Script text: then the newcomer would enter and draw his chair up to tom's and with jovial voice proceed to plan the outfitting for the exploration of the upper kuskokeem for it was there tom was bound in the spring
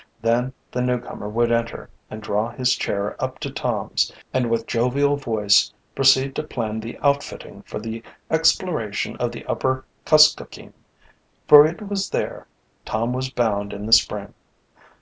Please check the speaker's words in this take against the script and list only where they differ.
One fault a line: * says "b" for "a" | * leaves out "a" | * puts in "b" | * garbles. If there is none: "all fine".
all fine